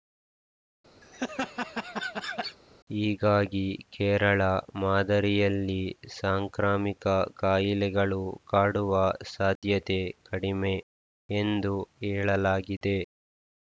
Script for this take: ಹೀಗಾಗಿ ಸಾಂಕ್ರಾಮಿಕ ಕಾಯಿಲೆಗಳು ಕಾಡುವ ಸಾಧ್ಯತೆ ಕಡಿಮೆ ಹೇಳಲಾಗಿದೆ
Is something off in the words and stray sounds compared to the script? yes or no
yes